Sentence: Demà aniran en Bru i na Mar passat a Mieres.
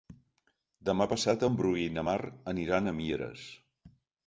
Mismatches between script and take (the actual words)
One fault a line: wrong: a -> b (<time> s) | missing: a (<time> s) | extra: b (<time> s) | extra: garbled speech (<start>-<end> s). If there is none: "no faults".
wrong: aniran -> passat (1.1 s)
wrong: passat -> aniran (2.5 s)